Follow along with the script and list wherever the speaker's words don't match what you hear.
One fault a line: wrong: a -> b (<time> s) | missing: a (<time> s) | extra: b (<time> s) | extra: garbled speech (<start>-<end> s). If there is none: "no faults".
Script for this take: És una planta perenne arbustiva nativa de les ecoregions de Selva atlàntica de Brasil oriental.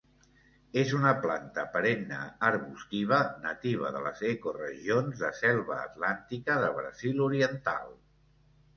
no faults